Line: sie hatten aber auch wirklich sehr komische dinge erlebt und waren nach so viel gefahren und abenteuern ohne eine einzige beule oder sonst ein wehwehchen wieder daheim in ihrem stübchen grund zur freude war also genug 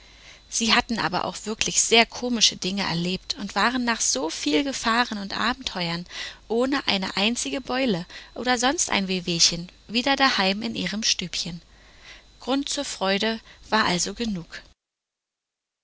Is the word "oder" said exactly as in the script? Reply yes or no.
yes